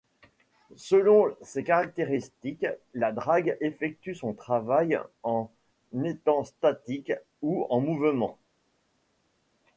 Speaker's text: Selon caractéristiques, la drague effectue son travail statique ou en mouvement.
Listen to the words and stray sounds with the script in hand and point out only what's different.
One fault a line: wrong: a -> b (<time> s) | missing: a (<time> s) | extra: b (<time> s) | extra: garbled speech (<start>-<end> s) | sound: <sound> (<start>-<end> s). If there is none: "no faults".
extra: ses (1.4 s)
extra: en étant (5.2 s)